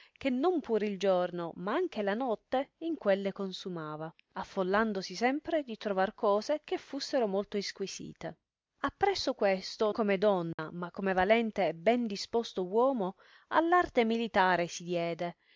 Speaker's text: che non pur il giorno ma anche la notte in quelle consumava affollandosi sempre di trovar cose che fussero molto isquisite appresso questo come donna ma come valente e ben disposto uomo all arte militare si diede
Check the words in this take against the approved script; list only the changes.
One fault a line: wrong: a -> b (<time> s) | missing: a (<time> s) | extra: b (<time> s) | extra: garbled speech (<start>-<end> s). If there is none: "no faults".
no faults